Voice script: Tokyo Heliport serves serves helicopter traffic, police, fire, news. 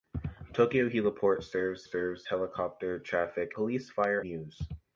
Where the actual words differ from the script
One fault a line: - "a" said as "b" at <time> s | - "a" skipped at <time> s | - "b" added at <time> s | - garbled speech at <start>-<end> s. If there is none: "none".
none